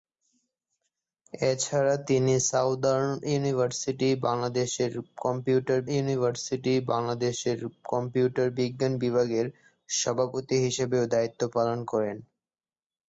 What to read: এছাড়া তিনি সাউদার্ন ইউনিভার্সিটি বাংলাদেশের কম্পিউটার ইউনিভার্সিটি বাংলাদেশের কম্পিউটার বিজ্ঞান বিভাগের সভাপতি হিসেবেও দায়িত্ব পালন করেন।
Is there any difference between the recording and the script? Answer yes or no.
no